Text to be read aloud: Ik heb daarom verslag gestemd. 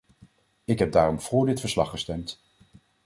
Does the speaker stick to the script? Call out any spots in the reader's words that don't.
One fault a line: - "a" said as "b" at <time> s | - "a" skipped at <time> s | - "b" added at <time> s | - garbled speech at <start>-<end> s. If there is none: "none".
- "voor dit" added at 1.2 s